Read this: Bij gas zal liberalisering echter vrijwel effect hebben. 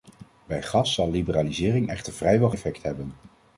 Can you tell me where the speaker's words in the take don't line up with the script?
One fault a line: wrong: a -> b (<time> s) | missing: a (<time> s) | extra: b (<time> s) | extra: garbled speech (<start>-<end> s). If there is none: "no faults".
no faults